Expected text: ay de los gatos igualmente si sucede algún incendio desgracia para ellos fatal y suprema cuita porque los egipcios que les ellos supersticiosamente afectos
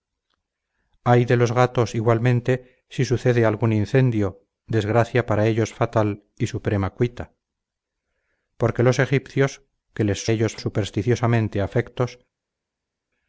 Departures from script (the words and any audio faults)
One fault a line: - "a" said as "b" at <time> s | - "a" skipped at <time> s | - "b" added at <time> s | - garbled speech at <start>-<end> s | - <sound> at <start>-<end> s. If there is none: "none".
none